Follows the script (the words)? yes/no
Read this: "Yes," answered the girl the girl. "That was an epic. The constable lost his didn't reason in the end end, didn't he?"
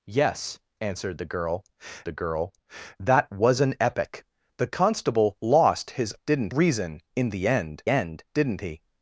yes